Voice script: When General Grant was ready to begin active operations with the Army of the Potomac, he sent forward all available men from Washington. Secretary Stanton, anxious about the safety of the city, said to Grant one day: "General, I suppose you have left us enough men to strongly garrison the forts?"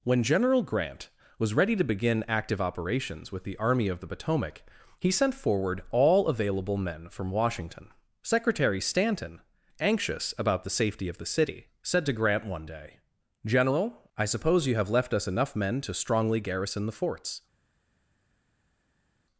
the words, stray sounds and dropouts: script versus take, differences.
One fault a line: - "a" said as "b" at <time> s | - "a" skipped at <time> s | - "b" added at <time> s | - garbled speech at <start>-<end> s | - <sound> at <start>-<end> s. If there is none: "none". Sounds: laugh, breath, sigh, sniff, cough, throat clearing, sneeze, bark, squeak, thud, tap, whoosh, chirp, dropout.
none